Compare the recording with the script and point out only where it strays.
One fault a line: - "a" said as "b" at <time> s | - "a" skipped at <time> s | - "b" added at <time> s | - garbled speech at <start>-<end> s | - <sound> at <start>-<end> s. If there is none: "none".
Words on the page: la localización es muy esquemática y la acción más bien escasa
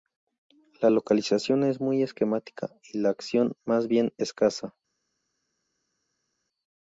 none